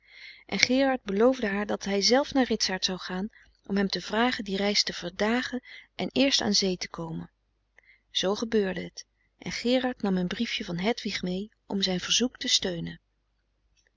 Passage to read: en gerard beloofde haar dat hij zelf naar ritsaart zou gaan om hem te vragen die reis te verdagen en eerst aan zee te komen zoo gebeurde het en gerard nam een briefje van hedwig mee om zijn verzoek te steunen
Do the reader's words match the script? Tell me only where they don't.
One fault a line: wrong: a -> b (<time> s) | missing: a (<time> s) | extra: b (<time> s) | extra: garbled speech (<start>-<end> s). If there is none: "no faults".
no faults